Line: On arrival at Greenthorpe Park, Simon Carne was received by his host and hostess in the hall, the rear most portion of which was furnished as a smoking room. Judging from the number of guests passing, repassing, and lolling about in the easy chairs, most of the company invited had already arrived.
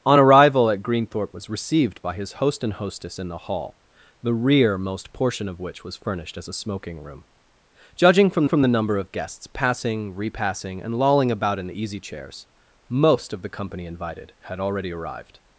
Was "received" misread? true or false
false